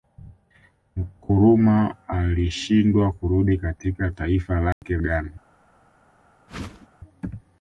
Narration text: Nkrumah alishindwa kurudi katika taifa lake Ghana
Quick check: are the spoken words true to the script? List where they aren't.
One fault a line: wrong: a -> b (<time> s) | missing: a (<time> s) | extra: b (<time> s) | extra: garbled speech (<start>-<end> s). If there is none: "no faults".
no faults